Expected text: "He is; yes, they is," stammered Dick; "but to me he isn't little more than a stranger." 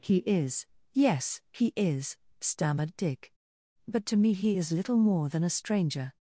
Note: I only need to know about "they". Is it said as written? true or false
false